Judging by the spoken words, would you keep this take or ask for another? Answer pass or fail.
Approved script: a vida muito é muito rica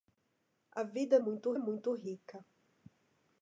pass